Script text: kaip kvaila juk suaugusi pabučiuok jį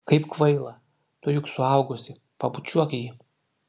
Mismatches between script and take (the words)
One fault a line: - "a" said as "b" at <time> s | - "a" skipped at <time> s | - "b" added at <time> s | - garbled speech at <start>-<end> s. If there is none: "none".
- "tu" added at 1.2 s